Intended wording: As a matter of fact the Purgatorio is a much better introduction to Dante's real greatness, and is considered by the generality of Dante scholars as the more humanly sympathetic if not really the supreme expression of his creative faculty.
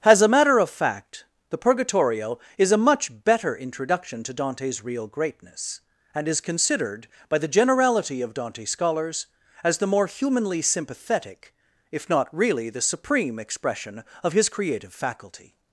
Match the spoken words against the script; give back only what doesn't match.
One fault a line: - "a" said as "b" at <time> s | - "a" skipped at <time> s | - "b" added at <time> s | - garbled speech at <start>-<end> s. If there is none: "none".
none